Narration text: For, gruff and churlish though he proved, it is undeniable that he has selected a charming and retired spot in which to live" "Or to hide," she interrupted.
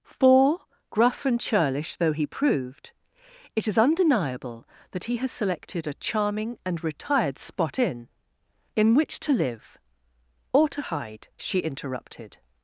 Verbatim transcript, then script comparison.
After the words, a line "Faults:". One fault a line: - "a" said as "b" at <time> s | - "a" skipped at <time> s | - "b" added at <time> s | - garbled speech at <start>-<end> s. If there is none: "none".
For, gruff and churlish though he proved, it is undeniable that he has selected a charming and retired spot in in which to live" "Or to hide," she interrupted.
Faults:
- "in" added at 8.8 s